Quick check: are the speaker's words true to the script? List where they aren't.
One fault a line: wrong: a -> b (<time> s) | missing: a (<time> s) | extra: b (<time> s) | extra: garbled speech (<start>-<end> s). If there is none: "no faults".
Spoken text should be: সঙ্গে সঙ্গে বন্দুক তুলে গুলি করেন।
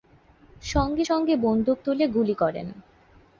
no faults